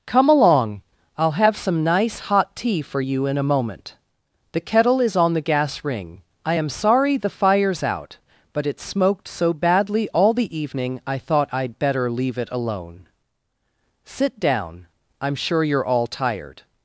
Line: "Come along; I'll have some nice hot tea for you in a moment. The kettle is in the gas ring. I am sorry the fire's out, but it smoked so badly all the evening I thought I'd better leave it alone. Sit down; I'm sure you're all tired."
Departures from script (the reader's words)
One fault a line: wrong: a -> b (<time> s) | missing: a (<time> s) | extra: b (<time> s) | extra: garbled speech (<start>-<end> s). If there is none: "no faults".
wrong: in -> on (5.2 s)